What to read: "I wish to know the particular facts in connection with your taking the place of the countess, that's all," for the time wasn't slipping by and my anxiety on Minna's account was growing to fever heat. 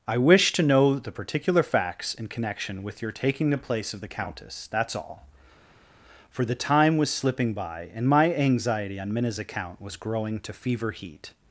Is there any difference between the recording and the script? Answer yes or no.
yes